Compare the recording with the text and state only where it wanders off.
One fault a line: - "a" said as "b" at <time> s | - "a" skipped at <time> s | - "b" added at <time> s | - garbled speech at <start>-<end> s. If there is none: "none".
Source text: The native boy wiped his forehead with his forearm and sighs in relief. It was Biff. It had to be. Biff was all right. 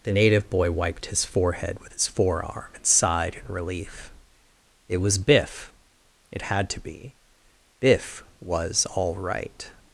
- "sighs" said as "sighed" at 2.9 s